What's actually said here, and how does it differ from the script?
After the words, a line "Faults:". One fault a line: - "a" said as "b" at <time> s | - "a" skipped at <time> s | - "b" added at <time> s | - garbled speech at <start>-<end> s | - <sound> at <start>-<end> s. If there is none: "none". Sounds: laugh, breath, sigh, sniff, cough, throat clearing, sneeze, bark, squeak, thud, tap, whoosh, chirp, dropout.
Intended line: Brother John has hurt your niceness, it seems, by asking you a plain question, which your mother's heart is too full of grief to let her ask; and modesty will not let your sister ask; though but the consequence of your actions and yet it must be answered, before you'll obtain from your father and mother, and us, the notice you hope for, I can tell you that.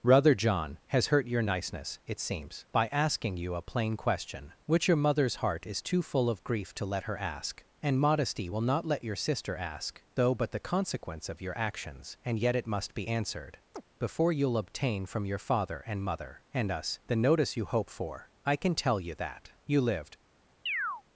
Brother John has hurt your niceness, it seems, by asking you a plain question, which your mother's heart is too full of grief to let her ask; and modesty will not let your sister ask; though but the consequence of your actions and yet it must be answered, before you'll obtain from your father and mother, and us, the notice you hope for, I can tell you that. You lived
Faults:
- chirp at 13.7-13.8 s
- "You lived" added at 19.7 s
- chirp at 20.7-21.0 s